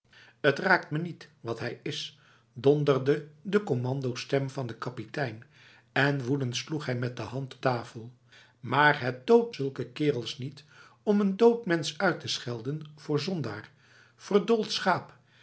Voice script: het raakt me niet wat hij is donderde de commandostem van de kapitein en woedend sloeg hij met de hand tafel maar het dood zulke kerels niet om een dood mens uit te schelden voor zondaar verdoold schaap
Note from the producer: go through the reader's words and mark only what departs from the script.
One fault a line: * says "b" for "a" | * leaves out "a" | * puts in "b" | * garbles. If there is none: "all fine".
all fine